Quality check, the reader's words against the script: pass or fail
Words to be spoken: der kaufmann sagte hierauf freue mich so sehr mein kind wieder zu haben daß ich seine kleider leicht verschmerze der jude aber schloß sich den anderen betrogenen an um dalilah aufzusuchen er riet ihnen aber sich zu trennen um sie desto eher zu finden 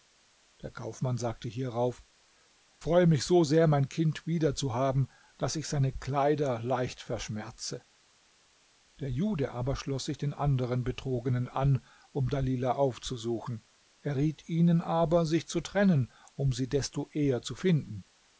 pass